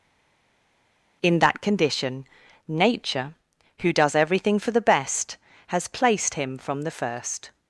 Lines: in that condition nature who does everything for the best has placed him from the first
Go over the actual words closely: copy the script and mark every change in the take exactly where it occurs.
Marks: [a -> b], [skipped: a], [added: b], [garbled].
in that condition nature who does everything for the best has placed him from the first